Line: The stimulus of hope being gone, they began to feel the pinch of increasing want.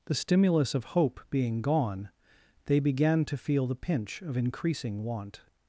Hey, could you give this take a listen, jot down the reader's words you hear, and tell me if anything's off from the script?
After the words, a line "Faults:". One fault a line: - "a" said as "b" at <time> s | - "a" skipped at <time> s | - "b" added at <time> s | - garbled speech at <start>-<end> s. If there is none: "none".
The stimulus of hope being gone, they began to feel the pinch of increasing want.
Faults:
none